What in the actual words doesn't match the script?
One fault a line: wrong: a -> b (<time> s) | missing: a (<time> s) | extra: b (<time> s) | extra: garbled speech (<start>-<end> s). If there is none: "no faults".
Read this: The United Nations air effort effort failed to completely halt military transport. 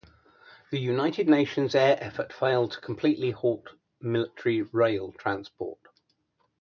missing: effort (2.3 s)
extra: rail (4.6 s)